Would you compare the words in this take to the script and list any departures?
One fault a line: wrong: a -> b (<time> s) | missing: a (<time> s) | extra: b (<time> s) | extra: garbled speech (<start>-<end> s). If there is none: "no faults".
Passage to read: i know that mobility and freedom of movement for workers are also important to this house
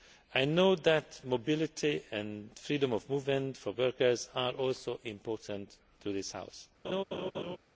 no faults